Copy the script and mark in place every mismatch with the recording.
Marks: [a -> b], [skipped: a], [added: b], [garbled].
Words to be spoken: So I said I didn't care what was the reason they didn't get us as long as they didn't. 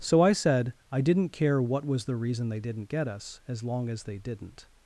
So I said I didn't care what was the reason they didn't get us as long as they didn't.